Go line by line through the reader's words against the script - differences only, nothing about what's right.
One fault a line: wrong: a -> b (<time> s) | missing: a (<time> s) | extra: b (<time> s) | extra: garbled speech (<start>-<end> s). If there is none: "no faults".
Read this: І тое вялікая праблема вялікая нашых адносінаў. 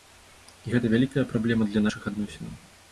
wrong: тое -> гэта (0.7 s)
wrong: вялікая -> для (1.7 s)